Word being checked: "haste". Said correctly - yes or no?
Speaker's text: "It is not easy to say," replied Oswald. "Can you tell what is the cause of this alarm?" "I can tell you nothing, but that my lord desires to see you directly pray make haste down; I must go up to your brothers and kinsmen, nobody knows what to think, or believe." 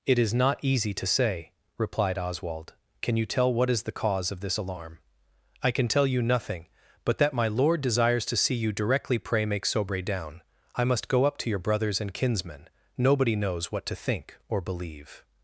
no